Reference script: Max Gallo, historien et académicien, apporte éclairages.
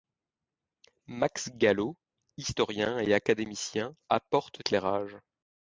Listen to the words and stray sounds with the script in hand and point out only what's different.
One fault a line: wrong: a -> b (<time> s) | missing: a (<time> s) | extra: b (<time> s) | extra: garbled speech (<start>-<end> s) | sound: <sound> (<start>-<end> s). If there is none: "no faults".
no faults